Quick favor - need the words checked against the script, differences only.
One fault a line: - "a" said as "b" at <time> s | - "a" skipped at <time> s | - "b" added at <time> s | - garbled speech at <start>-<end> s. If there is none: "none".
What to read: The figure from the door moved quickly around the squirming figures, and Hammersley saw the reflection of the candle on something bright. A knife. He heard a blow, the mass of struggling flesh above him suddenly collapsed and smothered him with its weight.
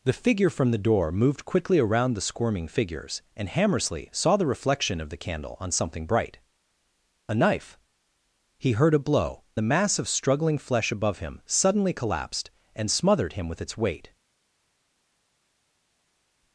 none